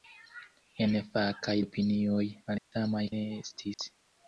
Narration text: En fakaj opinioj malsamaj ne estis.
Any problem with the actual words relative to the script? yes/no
no